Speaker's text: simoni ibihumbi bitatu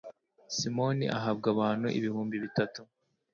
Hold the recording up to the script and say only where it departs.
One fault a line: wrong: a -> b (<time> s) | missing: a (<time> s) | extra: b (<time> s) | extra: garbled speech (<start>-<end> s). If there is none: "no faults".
extra: ahabwa abantu (1.2 s)